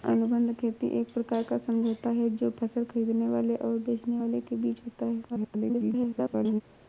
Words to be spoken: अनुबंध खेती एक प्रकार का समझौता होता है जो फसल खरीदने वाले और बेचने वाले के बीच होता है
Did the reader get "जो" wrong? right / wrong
right